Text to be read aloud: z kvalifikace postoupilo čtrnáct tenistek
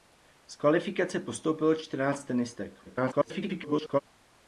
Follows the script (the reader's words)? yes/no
no